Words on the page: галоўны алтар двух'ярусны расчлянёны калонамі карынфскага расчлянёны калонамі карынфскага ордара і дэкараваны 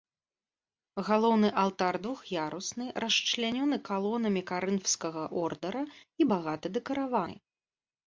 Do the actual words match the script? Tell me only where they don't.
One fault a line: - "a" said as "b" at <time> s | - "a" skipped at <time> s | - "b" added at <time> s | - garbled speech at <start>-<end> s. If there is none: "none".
- "расчлянёны калонамі карынфскага" skipped at 5.2 s
- "багата" added at 6.4 s